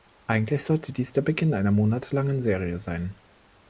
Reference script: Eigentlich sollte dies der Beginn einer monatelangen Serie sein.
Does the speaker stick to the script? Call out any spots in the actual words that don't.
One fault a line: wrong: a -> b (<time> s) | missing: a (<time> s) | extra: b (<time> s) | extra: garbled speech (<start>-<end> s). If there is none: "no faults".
no faults